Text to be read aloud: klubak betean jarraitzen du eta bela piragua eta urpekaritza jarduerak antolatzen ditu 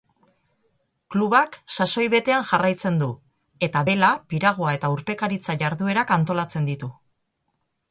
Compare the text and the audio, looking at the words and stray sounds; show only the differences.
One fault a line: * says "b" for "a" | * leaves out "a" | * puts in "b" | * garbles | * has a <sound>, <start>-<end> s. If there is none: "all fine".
* puts in "sasoi"